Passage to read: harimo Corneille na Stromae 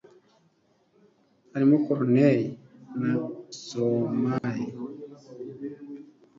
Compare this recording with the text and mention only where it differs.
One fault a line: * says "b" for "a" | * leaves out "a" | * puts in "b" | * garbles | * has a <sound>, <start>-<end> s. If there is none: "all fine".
* has a dropout, 4.4-4.4 s